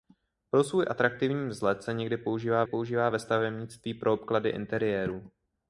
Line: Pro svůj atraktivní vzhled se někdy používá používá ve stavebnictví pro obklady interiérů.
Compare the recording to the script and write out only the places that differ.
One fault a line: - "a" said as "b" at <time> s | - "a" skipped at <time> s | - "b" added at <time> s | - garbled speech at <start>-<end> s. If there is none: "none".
none